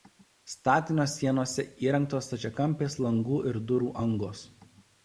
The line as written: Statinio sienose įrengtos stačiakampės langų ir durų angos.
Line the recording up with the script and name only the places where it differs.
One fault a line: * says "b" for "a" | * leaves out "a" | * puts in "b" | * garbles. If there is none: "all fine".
all fine